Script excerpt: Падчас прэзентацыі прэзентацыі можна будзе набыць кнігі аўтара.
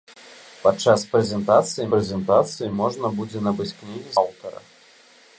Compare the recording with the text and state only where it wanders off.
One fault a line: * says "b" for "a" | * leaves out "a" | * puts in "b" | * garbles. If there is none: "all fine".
all fine